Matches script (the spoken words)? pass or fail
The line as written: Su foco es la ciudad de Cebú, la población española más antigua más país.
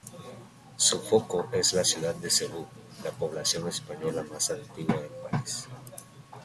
fail